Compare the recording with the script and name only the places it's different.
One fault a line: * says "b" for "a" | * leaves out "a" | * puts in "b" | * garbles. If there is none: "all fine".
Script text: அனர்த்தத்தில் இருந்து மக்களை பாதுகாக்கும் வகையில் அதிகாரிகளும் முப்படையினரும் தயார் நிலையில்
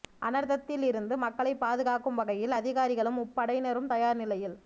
all fine